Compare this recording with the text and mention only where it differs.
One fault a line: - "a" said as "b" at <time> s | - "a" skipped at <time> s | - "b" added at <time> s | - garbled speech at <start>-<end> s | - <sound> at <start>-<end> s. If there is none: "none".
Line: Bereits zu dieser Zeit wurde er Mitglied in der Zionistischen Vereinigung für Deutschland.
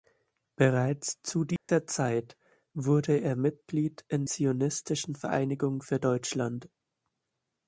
- dropout at 1.6-1.7 s
- "der" skipped at 4.3 s